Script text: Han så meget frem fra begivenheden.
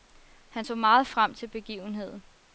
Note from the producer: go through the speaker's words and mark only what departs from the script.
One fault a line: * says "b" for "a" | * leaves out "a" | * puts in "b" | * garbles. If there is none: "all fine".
* says "til" for "fra"